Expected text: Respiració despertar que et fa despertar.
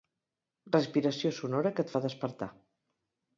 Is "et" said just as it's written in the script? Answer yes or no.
yes